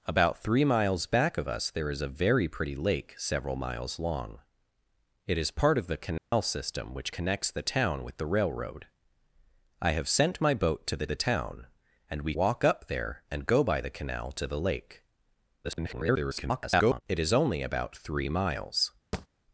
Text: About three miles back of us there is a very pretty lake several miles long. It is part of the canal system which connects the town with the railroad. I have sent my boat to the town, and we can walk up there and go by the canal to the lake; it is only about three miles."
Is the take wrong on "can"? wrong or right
wrong